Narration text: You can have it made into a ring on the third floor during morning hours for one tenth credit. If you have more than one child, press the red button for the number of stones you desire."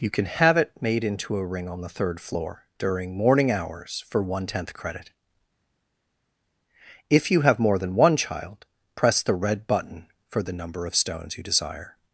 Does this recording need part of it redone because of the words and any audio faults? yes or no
no